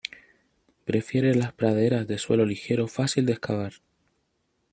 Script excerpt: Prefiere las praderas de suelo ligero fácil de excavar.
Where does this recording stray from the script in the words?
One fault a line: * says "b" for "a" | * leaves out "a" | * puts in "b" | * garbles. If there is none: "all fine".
all fine